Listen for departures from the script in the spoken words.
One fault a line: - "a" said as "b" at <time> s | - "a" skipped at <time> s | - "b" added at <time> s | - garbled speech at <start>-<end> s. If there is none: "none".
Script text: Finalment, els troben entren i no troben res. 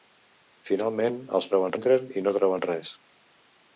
none